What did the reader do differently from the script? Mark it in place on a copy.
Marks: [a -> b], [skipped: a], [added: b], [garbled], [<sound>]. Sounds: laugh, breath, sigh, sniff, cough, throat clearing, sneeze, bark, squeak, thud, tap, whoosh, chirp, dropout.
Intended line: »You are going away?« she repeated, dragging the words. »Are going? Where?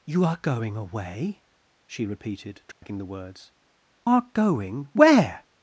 »You are going away?« she repeated, dragging [dropout] the words. »Are going? Where?